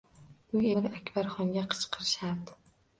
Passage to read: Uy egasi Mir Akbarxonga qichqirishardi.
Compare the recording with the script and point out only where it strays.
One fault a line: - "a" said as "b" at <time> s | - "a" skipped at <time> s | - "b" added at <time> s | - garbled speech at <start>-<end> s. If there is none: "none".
- "egasi" skipped at 0.7 s